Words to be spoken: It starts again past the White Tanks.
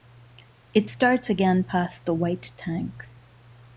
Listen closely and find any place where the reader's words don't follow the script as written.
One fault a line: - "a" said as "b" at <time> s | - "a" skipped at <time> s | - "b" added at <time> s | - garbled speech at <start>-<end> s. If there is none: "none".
none